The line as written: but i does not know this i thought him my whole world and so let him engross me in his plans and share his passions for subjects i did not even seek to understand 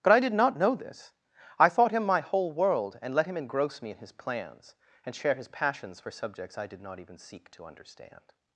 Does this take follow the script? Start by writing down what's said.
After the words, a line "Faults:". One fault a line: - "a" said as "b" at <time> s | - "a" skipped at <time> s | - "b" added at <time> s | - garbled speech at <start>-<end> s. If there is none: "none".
but i did not know this i thought him my whole world and let him engross me in his plans and share his passions for subjects i did not even seek to understand
Faults:
- "does" said as "did" at 0.2 s
- "so" skipped at 3.1 s